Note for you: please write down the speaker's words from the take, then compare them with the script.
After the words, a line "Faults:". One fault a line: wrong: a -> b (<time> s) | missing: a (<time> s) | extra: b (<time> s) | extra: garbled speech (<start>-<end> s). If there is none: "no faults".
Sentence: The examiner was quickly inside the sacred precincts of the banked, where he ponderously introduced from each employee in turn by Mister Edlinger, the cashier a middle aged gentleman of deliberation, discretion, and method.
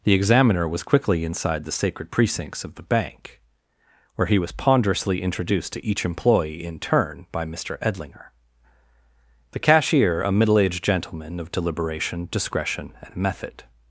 The examiner was quickly inside the sacred precincts of the bank, where he was ponderously introduced to each employee in turn by Mister Edlinger, the cashier a middle aged gentleman of deliberation, discretion, and method.
Faults:
wrong: banked -> bank (2.8 s)
extra: was (4.4 s)
wrong: from -> to (5.7 s)